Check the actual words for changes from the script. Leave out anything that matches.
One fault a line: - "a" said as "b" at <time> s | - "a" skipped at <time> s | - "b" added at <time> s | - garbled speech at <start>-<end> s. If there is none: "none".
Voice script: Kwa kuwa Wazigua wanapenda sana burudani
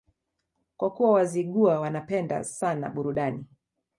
none